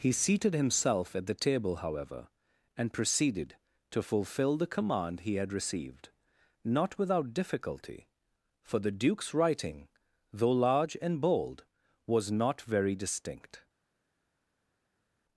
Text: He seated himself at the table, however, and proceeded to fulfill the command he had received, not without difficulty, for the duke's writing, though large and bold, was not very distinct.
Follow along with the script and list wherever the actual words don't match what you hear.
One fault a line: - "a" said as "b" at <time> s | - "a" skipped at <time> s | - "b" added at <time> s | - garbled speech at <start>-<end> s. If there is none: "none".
none